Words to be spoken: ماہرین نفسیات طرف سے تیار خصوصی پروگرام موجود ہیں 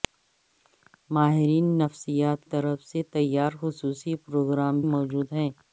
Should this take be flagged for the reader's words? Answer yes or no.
no